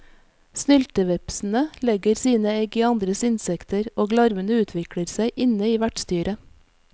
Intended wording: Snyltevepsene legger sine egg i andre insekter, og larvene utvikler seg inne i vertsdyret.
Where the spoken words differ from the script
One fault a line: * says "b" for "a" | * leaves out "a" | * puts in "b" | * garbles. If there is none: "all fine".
all fine